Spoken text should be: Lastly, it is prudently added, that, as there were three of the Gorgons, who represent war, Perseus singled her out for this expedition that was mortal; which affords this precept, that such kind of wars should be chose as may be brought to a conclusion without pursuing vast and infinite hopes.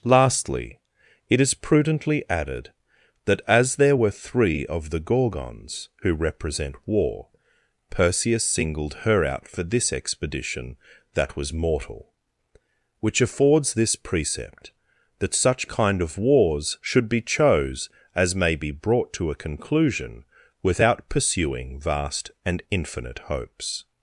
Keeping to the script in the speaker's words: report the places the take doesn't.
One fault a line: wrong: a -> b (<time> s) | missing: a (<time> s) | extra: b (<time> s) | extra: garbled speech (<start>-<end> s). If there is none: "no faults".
no faults